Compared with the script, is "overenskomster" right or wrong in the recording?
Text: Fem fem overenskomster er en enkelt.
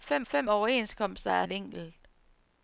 right